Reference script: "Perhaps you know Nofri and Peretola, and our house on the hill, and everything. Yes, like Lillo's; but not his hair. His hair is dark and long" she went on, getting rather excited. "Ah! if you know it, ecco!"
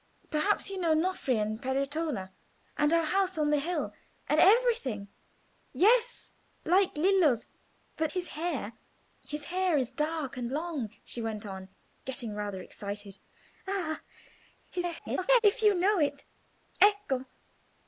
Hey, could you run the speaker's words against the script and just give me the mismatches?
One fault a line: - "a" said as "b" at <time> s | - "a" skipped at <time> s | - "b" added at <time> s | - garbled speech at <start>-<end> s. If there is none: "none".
- "not" skipped at 8.1 s
- garbled speech at 14.7-15.4 s